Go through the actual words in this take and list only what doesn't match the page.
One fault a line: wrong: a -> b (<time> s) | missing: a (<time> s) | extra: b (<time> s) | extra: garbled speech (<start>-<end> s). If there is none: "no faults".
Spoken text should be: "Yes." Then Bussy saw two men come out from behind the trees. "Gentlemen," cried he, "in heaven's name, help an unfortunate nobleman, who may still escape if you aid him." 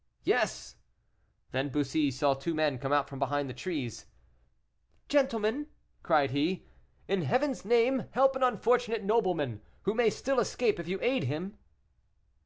no faults